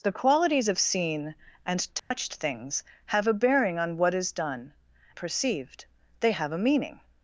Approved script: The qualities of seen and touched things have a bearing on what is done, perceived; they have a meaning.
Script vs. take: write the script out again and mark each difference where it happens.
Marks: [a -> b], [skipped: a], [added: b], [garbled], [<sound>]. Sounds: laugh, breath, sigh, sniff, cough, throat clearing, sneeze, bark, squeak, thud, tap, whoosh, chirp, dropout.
The qualities of seen and touched [dropout] things have a bearing on what is done, perceived; they have a meaning.